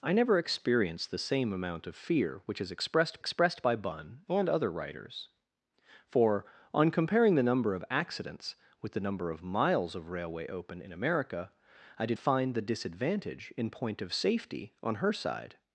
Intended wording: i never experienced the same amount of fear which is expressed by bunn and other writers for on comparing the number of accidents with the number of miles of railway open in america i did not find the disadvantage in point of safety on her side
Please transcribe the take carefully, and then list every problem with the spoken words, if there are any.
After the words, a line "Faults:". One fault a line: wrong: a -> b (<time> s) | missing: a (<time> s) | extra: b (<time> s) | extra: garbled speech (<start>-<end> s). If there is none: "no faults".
i never experienced the same amount of fear which is expressed expressed by bunn and other writers for on comparing the number of accidents with the number of miles of railway open in america i did find the disadvantage in point of safety on her side
Faults:
extra: expressed (3.2 s)
missing: not (12.2 s)